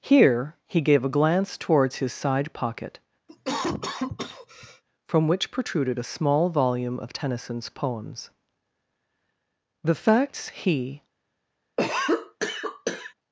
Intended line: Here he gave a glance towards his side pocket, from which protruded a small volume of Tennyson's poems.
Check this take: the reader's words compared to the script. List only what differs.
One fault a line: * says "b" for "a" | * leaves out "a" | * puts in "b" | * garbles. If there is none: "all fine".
* puts in "The facts he"